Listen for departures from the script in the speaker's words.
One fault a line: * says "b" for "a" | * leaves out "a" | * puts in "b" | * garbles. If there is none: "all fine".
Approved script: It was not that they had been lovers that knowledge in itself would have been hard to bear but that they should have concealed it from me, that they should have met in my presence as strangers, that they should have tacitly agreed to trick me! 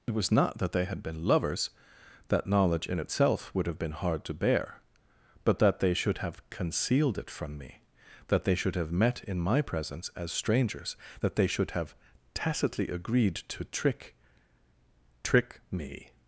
* puts in "trick"